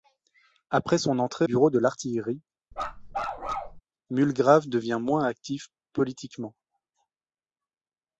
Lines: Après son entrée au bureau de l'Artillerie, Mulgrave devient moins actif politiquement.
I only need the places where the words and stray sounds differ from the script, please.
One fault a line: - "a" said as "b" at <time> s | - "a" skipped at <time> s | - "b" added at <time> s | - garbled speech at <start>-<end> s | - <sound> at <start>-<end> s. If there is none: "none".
- "au" skipped at 1.5 s
- bark at 2.7-3.8 s